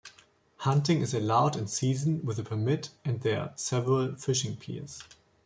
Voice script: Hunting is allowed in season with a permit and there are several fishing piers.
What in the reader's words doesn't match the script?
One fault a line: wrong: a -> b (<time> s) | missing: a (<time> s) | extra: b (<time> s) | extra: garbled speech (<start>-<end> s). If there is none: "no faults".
no faults